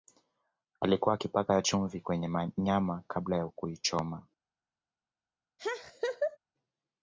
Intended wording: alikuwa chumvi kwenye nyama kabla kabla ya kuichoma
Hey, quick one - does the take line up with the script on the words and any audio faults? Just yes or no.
no